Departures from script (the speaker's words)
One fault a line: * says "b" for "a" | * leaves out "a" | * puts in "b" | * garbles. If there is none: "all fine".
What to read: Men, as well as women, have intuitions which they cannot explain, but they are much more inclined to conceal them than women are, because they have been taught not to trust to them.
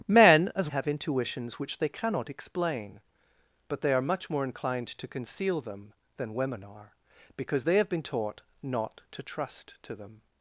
* leaves out "well as women"